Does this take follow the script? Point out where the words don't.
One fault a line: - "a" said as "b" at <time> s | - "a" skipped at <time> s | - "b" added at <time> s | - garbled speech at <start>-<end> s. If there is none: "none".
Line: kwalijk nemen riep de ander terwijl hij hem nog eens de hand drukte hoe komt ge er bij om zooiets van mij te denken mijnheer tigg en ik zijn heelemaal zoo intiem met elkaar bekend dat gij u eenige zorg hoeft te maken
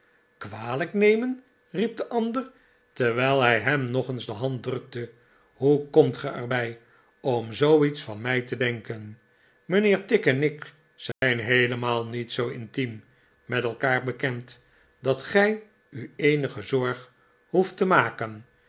- "niet" added at 12.0 s